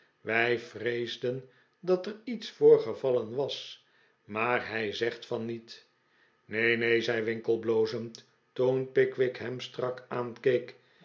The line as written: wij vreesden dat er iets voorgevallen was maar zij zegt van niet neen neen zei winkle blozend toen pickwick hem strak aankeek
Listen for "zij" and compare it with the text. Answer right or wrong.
wrong